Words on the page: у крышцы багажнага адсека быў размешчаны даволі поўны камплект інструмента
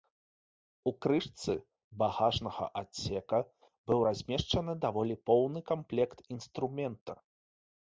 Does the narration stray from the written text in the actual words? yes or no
no